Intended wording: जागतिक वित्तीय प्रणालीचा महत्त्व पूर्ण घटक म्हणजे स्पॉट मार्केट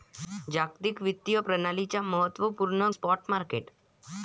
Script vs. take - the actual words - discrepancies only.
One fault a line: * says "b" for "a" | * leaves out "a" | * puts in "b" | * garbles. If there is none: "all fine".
* leaves out "घटक म्हणजे"